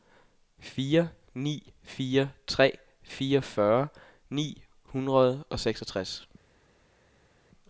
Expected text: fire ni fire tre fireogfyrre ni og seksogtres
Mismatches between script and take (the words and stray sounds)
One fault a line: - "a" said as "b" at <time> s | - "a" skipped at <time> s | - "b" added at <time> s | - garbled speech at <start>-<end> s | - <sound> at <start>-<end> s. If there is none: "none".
- "hundrede" added at 4.8 s